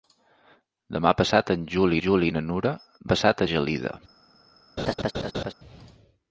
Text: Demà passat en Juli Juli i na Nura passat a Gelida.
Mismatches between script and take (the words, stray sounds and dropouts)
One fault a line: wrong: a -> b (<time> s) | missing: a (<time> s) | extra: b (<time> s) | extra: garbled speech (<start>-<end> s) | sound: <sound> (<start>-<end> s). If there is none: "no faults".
sound: laugh (4.8-5.5 s)